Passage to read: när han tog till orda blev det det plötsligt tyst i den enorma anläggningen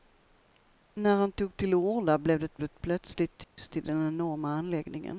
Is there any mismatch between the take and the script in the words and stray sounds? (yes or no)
yes